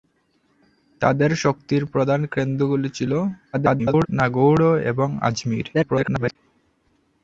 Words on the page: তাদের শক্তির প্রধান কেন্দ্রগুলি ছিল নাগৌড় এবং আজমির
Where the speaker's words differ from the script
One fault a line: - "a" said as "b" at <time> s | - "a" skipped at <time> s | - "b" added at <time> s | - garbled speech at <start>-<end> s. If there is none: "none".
- garbled speech at 3.5-4.1 s
- garbled speech at 5.7-6.4 s